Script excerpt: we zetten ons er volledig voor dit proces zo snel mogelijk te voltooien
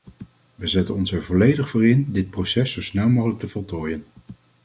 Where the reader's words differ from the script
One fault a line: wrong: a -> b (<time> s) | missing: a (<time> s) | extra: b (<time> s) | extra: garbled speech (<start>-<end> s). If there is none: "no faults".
extra: in (1.9 s)